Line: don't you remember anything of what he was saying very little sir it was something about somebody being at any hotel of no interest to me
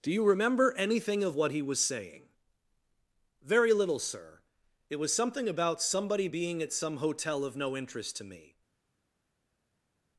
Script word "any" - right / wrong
wrong